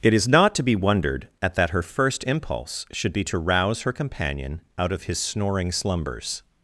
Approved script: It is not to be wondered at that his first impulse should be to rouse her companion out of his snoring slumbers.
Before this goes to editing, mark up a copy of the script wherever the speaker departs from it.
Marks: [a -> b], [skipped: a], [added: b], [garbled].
It is not to be wondered at that [his -> her] first impulse should be to rouse her companion out of his snoring slumbers.